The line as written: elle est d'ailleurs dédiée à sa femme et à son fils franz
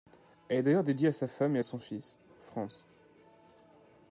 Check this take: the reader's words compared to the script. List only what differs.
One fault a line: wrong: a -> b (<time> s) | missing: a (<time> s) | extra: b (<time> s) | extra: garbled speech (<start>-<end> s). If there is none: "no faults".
no faults